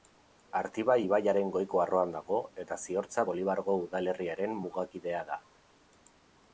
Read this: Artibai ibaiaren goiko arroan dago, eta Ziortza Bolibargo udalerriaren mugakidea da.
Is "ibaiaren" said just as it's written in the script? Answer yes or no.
yes